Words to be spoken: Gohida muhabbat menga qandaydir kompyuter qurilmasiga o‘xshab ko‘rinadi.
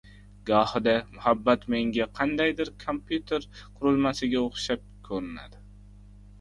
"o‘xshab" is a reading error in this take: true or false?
false